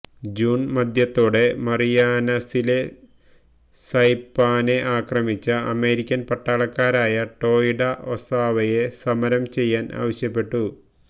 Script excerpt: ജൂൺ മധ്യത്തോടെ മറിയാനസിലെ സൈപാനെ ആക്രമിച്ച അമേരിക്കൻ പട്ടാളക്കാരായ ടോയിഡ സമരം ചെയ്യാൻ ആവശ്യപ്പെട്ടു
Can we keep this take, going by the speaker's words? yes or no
no